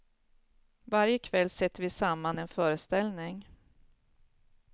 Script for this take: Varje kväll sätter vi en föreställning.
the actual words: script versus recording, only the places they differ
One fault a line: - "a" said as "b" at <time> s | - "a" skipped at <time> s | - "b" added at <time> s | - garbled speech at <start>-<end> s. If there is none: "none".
- "samman" added at 1.9 s